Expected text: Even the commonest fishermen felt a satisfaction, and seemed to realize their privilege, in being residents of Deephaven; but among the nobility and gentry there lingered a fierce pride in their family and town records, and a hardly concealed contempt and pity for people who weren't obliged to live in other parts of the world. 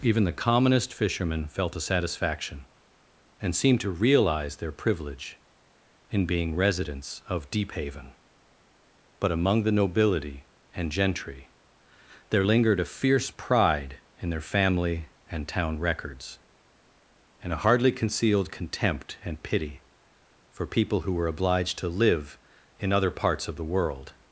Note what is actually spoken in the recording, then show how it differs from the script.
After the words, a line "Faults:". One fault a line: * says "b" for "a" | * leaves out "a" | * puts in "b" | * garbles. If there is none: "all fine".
Even the commonest fishermen felt a satisfaction, and seemed to realize their privilege, in being residents of Deephaven; but among the nobility and gentry there lingered a fierce pride in their family and town records, and a hardly concealed contempt and pity for people who were obliged to live in other parts of the world.
Faults:
* says "were" for "weren't"